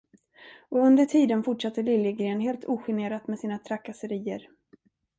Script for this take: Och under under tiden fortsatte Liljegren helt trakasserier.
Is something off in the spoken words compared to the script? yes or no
yes